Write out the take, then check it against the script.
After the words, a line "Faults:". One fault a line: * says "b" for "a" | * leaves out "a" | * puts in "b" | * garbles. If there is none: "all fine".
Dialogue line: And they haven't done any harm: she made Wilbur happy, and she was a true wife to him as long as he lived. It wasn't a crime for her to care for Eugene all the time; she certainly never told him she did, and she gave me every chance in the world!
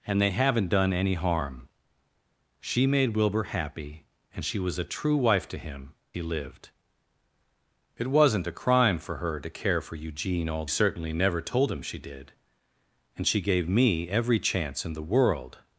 And they haven't done any harm: she made Wilbur happy, and she was a true wife to him he lived. It wasn't a crime for her to care for Eugene all certainly never told him she did, and she gave me every chance in the world!
Faults:
* leaves out "as long as"
* leaves out "the time she"